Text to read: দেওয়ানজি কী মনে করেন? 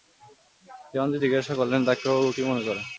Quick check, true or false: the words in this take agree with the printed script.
false